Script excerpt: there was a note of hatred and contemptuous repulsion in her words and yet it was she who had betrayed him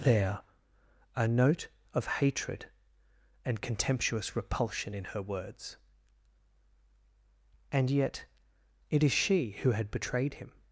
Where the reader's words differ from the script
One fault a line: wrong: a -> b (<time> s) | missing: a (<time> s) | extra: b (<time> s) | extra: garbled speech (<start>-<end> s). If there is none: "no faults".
missing: was (0.4 s)
wrong: was -> is (9.0 s)